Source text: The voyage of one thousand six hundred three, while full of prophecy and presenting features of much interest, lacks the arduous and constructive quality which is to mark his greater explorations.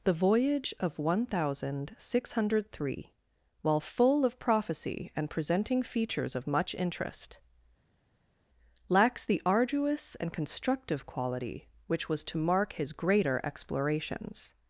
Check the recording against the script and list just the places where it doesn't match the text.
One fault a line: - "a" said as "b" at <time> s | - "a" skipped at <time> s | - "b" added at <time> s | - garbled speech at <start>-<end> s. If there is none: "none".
- "is" said as "was" at 12.1 s